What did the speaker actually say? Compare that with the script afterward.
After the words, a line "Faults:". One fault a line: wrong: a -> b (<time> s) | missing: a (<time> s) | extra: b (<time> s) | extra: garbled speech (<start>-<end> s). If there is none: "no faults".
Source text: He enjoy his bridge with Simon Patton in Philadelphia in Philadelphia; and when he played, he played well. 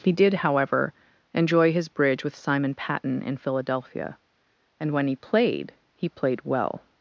He did, however, enjoy his bridge with Simon Patton in Philadelphia; and when he played, he played well.
Faults:
extra: did however (0.1 s)
missing: in Philadelphia (4.2 s)